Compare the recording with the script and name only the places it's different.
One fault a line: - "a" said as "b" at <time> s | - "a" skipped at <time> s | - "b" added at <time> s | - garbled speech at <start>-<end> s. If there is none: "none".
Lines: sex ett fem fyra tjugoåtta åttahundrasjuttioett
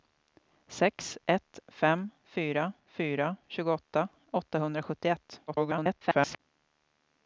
- "fyra" added at 2.9 s
- garbled speech at 5.5-6.4 s